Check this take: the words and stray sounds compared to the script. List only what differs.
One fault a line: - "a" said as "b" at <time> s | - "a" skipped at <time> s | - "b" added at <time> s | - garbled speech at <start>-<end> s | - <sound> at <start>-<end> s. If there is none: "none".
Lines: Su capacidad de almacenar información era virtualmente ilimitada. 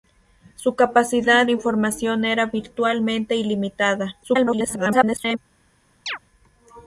- "de almacenar" skipped at 1.4 s
- garbled speech at 4.2-5.4 s
- chirp at 6.1-6.2 s